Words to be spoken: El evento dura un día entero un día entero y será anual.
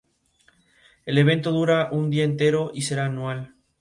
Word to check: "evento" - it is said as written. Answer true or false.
true